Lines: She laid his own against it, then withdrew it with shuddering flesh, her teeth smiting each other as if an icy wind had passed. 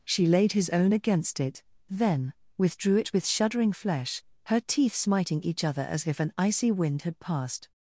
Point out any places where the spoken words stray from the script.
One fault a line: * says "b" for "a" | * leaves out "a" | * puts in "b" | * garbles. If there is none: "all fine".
all fine